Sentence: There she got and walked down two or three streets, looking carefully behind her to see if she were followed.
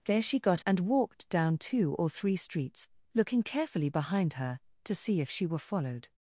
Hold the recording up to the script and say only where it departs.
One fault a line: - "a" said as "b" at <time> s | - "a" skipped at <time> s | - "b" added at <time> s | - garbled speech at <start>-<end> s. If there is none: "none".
none